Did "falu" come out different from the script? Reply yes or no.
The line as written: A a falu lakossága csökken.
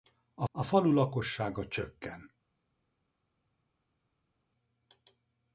no